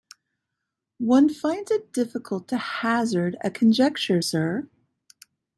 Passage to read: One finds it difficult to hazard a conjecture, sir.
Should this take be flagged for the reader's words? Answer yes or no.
no